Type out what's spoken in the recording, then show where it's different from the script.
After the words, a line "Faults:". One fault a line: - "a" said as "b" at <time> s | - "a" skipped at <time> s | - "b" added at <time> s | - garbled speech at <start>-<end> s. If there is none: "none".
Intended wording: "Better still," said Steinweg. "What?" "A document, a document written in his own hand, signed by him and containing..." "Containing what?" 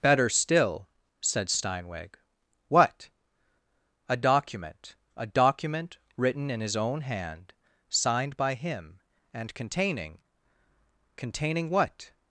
"Better still," said Steinweg. "What?" "A document, a document written in his own hand, signed by him and containing..." "Containing what?"
Faults:
none